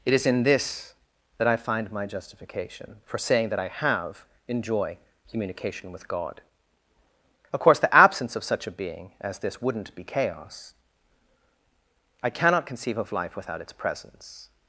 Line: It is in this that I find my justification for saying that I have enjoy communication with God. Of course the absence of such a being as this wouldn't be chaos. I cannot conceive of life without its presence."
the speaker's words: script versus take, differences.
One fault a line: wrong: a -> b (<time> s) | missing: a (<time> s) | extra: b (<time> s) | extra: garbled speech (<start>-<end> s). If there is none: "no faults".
no faults